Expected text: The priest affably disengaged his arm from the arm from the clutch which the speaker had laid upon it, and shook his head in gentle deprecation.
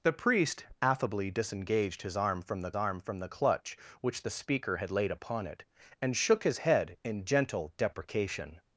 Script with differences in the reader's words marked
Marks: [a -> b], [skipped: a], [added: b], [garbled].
The priest affably disengaged his arm from the arm from the clutch which the speaker had laid upon it, and shook his head in gentle deprecation.